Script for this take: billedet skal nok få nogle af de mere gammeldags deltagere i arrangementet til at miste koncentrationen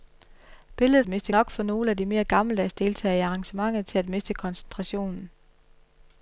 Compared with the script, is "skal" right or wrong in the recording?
wrong